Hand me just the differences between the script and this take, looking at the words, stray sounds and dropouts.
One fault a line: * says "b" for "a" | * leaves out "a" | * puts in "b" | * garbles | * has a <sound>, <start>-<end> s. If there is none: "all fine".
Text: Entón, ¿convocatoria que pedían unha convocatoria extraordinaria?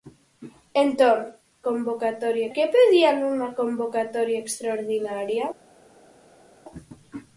all fine